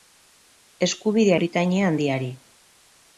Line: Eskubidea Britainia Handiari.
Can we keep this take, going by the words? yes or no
yes